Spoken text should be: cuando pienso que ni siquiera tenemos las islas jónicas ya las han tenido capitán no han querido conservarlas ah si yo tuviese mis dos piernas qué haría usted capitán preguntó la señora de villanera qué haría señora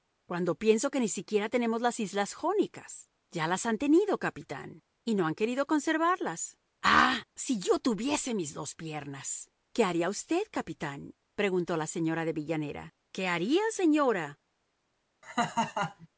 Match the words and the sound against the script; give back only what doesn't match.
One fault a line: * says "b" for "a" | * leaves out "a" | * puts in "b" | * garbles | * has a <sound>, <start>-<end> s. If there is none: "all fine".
* puts in "y"
* has a laugh, 15.2-16.1 s